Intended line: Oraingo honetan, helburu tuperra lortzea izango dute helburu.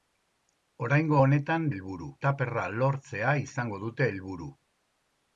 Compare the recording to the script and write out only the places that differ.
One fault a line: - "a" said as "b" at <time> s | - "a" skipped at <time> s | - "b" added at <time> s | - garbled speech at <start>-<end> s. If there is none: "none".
none